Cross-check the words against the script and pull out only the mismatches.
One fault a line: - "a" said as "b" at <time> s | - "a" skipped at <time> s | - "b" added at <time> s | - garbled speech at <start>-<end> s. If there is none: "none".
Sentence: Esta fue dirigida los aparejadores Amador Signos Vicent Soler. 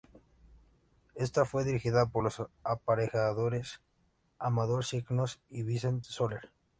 - "por" added at 2.1 s
- "y" added at 5.5 s